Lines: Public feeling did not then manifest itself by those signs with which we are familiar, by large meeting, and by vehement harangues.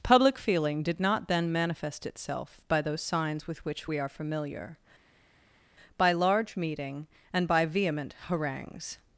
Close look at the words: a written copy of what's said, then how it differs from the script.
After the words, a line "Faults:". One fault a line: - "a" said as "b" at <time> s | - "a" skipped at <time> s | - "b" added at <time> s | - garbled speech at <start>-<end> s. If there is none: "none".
Public feeling did not then manifest itself by those signs with which we are familiar, by large meeting, and by vehement harangues.
Faults:
none